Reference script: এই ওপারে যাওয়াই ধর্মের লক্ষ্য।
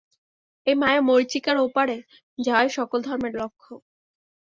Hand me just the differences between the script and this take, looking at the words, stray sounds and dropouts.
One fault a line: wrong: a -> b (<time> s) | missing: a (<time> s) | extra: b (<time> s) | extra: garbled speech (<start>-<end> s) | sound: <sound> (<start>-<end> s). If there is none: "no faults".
extra: মায়া-মরীচিকার (0.8 s)
extra: সকল (2.8 s)